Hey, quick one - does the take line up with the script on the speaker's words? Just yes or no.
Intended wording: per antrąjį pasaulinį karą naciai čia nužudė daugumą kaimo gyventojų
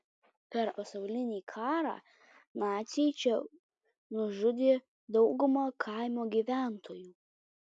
no